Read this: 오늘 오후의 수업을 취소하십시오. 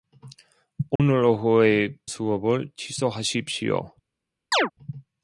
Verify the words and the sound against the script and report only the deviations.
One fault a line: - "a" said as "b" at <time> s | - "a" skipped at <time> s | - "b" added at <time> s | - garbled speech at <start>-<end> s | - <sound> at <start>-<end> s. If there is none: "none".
- dropout at 1.0-1.0 s
- chirp at 4.5-4.7 s